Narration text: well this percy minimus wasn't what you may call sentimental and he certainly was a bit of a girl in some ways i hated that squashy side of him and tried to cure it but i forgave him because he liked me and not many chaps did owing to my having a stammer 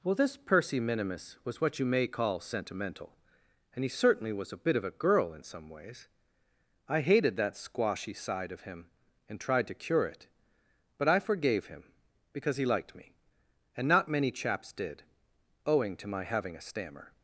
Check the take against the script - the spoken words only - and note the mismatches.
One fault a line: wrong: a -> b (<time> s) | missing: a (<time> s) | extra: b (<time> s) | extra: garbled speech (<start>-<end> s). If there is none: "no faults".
wrong: wasn't -> was (1.4 s)